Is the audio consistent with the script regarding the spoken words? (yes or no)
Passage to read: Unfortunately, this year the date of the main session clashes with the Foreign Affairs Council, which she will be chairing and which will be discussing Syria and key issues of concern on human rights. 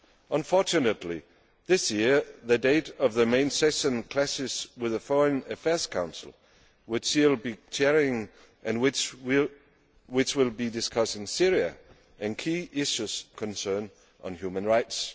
no